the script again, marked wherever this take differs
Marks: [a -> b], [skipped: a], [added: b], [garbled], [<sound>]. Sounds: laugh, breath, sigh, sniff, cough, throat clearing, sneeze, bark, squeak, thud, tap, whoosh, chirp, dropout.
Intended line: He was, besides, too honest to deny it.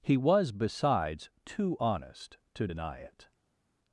He was, besides, too honest to deny it.